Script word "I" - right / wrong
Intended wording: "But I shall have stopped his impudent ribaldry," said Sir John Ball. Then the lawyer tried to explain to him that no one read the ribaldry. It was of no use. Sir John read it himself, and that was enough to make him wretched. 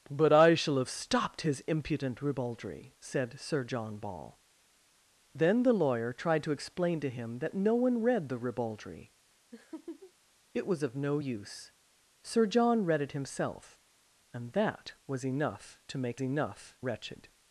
right